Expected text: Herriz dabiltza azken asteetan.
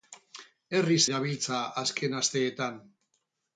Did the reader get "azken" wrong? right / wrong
right